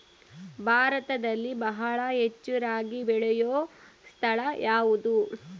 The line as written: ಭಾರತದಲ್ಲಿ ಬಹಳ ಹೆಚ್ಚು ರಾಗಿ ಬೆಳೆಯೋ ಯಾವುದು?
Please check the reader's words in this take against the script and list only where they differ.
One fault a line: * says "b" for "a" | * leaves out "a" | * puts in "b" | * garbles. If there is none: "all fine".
* puts in "ಸ್ಥಳ"